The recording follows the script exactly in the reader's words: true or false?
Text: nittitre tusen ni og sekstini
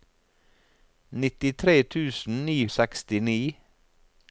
true